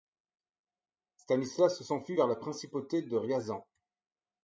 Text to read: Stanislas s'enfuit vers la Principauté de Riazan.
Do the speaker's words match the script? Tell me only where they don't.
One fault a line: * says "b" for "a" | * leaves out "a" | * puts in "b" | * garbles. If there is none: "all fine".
all fine